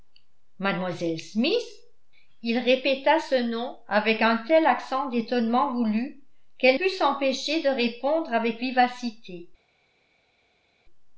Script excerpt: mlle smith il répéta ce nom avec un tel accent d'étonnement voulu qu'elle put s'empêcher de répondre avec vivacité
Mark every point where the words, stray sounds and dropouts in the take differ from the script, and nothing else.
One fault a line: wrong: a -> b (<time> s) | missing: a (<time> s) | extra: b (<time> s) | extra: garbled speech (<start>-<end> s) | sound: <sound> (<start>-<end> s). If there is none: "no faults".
no faults